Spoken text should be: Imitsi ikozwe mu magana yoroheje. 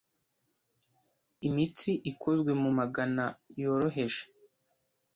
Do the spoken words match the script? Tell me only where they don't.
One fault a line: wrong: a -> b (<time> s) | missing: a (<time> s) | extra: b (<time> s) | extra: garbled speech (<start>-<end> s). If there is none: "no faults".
no faults